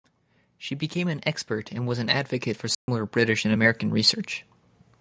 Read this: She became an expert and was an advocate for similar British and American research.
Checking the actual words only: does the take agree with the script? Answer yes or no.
yes